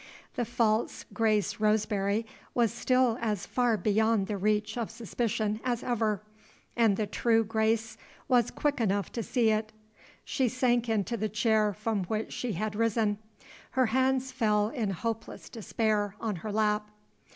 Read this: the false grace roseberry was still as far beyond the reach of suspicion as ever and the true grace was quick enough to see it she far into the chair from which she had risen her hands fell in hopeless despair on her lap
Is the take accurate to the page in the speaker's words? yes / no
no